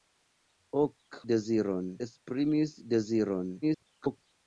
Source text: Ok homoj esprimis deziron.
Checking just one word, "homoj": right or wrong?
wrong